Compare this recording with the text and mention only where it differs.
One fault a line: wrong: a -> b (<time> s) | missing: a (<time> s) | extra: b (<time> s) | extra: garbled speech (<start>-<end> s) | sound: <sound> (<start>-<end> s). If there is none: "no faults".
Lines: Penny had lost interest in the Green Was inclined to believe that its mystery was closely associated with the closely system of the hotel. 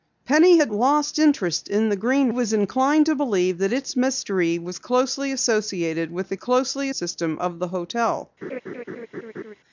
sound: laugh (8.4-9.5 s)